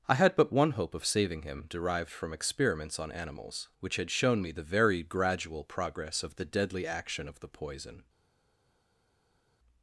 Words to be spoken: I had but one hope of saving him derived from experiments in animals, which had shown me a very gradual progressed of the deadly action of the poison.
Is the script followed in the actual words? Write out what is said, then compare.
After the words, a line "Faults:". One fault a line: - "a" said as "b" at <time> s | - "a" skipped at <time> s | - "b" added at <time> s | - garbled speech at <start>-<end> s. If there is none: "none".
I had but one hope of saving him derived from experiments on animals, which had shown me the very gradual progress of the deadly action of the poison.
Faults:
- "in" said as "on" at 3.0 s
- "a" said as "the" at 4.5 s
- "progressed" said as "progress" at 5.6 s